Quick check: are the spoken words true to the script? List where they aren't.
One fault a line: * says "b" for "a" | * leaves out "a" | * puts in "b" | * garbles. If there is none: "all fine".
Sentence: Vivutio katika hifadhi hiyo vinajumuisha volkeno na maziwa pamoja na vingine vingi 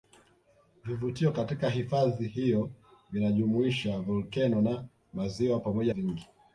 * leaves out "na vingine"